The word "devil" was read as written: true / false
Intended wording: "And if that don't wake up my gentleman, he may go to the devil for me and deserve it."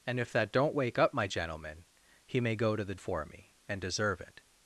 false